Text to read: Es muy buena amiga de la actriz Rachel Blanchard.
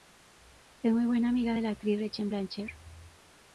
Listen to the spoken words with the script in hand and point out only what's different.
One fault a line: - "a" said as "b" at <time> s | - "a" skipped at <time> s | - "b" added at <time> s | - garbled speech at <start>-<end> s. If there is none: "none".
none